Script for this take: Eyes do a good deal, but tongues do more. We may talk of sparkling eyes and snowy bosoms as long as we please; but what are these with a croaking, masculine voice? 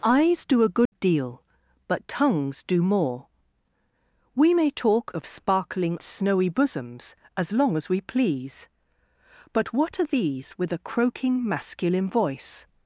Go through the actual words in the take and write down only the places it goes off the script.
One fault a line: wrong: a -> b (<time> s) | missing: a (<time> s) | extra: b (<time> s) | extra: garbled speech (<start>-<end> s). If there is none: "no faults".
missing: eyes and (6.0 s)